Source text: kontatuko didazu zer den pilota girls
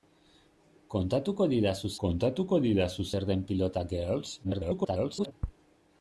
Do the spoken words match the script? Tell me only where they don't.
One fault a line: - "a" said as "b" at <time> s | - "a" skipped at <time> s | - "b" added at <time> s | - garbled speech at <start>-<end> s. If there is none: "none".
- "kontatuko didazu" added at 2.0 s
- garbled speech at 4.4-5.3 s